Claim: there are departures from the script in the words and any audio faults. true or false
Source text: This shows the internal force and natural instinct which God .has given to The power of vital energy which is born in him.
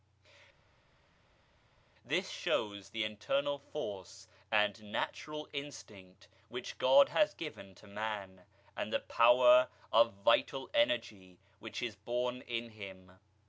true